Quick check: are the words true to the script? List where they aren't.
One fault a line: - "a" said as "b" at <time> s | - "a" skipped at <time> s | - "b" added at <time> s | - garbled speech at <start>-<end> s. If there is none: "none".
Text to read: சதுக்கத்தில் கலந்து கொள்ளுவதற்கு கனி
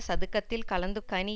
- "கொள்ளுவதற்கு" skipped at 1.0 s